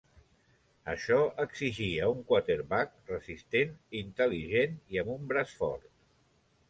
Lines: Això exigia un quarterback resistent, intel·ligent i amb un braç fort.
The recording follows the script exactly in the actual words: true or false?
true